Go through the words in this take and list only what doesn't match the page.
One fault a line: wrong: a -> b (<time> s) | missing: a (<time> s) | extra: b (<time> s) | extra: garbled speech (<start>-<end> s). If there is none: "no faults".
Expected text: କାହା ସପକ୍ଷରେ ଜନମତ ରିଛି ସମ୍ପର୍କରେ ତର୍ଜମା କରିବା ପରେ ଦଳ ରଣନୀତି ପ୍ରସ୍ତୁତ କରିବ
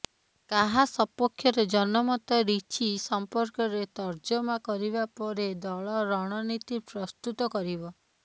no faults